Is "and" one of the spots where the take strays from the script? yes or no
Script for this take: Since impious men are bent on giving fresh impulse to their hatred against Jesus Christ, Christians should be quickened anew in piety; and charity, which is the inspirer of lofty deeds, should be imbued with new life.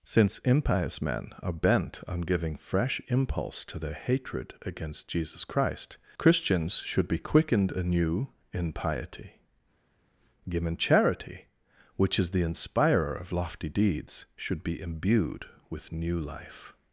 yes